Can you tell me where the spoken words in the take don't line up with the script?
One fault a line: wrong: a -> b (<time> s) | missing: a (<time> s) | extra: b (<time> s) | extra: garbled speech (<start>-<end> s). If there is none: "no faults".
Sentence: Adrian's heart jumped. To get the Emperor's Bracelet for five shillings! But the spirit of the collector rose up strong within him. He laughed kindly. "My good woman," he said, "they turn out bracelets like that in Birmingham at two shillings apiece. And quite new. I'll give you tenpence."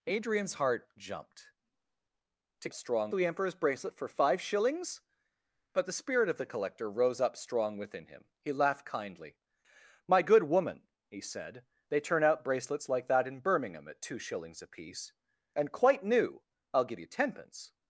wrong: get -> strong (2.7 s)